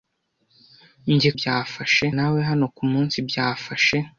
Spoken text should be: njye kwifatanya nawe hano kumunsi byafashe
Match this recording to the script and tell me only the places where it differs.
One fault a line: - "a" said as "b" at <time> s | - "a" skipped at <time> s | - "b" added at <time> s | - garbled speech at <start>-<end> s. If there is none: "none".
- "kwifatanya" said as "byafashe" at 1.4 s